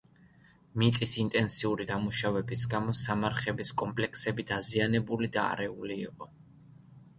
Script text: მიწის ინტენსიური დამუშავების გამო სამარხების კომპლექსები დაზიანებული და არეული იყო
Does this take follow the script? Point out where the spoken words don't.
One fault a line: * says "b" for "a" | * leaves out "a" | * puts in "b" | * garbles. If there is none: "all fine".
all fine